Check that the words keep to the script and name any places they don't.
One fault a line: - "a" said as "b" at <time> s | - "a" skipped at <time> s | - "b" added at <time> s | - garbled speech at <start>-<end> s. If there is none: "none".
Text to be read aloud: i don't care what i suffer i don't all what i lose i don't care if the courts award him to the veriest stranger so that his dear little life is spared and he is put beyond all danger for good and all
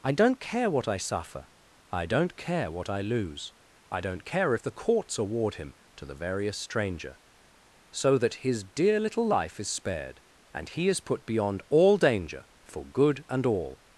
- "all" said as "care" at 2.4 s